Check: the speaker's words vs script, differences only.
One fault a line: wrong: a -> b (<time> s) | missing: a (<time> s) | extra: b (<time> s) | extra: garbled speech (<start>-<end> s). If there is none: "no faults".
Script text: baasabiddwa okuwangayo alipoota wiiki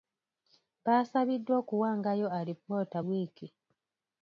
no faults